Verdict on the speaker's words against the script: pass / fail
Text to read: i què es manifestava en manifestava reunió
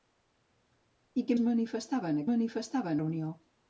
pass